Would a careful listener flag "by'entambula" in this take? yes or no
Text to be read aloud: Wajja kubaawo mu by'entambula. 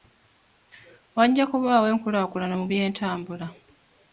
no